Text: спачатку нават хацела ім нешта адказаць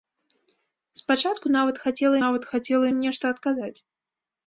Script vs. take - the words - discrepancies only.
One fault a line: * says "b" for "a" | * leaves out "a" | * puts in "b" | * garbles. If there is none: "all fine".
* puts in "нават хацела"